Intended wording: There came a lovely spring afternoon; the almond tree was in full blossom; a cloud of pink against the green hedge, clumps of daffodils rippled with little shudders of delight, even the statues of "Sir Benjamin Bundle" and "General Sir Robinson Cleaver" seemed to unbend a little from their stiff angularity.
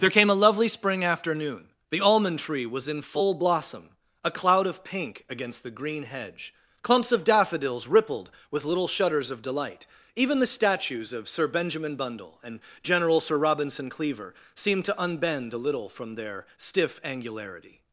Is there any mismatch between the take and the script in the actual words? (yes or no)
no